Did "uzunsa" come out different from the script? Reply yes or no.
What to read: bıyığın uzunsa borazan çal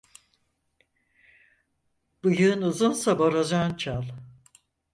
no